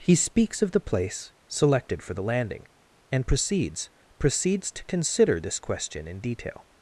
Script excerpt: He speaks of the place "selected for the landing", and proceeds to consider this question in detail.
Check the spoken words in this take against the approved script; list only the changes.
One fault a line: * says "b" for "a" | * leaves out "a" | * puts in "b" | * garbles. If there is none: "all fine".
* puts in "proceeds"